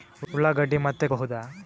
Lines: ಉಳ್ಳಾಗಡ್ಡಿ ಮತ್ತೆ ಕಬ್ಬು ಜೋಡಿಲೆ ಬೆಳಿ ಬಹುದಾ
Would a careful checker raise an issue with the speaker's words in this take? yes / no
yes